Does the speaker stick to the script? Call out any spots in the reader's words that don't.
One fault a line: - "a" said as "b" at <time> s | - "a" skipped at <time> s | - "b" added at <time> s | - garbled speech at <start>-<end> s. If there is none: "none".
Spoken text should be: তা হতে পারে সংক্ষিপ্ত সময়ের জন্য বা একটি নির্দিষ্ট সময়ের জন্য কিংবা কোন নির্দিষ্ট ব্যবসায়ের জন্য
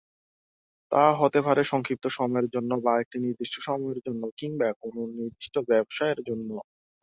none